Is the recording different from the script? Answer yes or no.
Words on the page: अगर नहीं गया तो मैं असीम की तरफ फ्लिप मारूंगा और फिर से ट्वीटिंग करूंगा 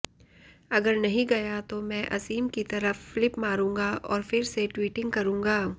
no